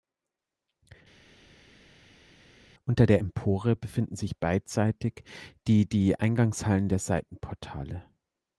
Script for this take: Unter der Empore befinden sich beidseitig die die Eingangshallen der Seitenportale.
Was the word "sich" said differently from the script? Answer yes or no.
no